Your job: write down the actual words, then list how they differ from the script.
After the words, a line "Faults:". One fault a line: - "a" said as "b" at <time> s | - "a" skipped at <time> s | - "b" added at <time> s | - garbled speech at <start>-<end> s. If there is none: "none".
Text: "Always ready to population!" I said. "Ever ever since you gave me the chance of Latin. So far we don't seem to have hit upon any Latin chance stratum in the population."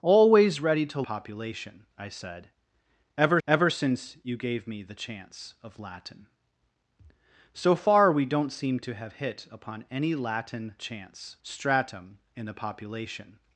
"Always ready to population!" I said. "Ever ever since you gave me the chance of Latin. So far we don't seem to have hit upon any Latin chance stratum in the population."
Faults:
none